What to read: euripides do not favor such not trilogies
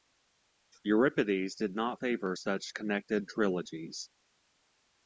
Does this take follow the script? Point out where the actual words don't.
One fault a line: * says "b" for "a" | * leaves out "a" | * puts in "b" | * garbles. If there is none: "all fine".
* says "did" for "do"
* says "connected" for "not"